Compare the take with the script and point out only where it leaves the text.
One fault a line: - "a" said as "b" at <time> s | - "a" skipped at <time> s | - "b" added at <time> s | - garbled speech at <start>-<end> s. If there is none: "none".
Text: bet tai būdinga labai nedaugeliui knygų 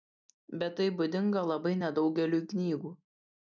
none